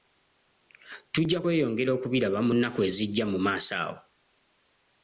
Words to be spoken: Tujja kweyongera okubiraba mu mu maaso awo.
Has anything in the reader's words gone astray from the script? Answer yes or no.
yes